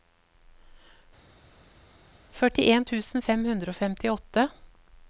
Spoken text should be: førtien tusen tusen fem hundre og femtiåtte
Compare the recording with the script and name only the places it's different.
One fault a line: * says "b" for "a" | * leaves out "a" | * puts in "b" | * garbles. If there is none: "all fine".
* leaves out "tusen"